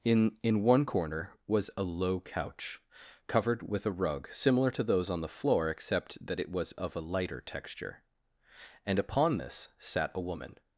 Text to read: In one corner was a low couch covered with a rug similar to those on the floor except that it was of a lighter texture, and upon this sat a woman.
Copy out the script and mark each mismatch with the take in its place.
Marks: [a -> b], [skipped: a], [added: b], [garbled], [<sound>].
In [added: in] one corner was a low couch covered with a rug similar to those on the floor except that it was of a lighter texture, and upon this sat a woman.